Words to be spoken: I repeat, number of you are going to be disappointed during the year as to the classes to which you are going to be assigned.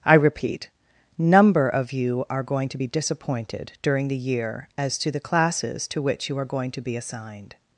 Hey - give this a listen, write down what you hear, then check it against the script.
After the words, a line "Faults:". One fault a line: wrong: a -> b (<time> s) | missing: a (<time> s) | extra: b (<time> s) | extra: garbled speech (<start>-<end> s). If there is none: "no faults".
I repeat, number of you are going to be disappointed during the year as to the classes to which you are going to be assigned.
Faults:
no faults